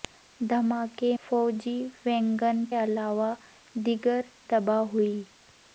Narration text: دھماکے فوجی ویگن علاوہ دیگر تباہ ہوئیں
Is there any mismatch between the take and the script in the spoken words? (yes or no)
no